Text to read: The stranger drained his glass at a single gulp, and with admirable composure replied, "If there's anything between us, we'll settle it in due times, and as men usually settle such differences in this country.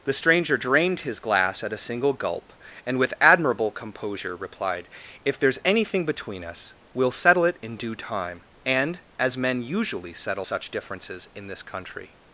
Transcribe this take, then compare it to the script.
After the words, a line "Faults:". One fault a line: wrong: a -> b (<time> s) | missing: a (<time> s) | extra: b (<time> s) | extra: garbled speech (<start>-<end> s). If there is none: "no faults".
The stranger drained his glass at a single gulp, and with admirable composure replied, "If there's anything between us, we'll settle it in due time, and as men usually settle such differences in this country.
Faults:
wrong: times -> time (7.9 s)